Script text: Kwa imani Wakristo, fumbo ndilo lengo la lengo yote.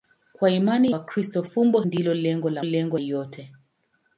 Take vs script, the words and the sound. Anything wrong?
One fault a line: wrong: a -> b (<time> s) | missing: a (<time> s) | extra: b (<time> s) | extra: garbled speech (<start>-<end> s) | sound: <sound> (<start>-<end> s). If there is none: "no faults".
no faults